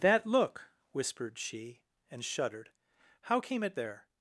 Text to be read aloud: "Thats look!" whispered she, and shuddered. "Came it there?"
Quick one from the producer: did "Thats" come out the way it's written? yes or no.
no